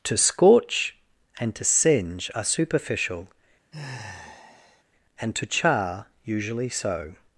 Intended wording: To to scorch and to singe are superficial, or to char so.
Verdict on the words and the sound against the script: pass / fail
fail